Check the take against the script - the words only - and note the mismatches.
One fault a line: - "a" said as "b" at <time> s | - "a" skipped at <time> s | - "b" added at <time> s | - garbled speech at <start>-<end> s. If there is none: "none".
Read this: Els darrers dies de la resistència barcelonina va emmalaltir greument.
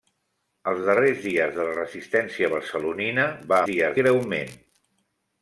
- "emmalaltir" said as "dies" at 3.7 s